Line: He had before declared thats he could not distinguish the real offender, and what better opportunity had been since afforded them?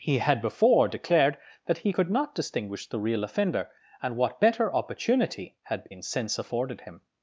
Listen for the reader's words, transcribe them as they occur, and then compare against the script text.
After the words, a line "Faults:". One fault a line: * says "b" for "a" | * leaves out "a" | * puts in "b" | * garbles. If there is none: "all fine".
He had before declared that he could not distinguish the real offender, and what better opportunity had been since afforded him?
Faults:
* says "that" for "thats"
* says "him" for "them"